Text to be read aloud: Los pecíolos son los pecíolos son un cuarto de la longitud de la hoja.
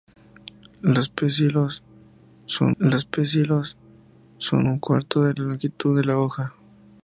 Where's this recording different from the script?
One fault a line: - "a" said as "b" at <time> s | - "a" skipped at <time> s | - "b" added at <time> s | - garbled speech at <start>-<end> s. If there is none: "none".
none